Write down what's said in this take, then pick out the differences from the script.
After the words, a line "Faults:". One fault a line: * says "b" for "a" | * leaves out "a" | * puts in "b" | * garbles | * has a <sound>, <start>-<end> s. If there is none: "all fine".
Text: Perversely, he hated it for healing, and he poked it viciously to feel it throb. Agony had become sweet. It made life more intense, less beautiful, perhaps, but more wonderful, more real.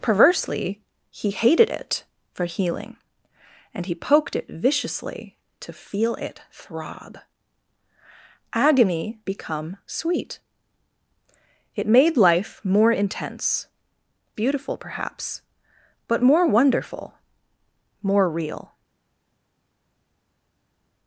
Perversely, he hated it for healing, and he poked it viciously to feel it throb. Agony become sweet. It made life more intense, beautiful, perhaps, but more wonderful, more real.
Faults:
* leaves out "had"
* leaves out "less"